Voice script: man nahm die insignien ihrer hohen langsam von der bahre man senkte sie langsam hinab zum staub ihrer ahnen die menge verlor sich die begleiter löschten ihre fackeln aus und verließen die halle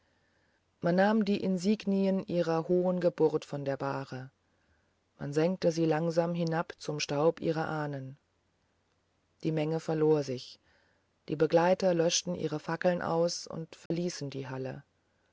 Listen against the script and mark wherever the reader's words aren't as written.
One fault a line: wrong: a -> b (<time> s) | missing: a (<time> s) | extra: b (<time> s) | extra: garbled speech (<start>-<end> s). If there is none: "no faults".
wrong: langsam -> geburt (3.0 s)